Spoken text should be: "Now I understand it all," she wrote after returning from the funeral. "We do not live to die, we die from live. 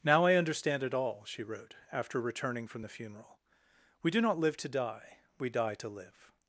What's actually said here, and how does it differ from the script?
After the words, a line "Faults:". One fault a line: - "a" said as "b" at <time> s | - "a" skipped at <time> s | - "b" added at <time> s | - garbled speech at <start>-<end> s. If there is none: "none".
"Now I understand it all," she wrote after returning from the funeral. "We do not live to die, we die to live.
Faults:
- "from" said as "to" at 5.8 s